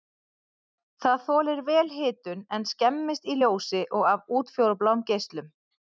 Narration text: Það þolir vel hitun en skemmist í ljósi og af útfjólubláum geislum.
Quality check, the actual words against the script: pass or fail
pass